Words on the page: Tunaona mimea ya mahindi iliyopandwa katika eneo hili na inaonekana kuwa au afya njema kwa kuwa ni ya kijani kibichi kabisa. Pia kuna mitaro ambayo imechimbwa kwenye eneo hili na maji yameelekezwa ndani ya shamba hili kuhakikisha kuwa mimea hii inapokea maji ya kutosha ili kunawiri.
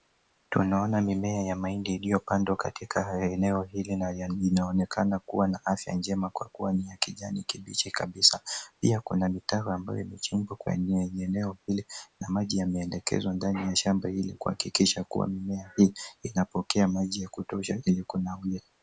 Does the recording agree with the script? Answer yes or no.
no